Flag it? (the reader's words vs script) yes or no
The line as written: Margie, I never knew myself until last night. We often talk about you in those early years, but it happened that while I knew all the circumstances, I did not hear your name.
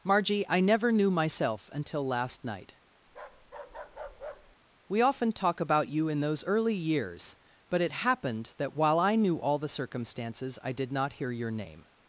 no